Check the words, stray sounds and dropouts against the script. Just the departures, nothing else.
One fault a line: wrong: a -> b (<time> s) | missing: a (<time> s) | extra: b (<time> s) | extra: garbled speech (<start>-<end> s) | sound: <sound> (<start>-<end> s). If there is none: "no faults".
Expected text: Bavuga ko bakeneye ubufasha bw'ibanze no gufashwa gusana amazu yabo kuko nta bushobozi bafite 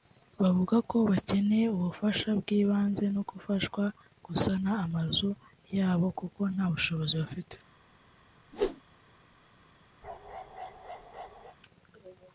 sound: whoosh (8.5-8.8 s)
sound: bark (10.0-11.6 s)